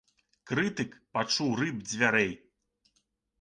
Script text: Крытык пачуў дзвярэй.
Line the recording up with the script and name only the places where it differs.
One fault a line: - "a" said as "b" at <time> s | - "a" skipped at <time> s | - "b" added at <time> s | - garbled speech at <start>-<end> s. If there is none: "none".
- "рып" added at 1.6 s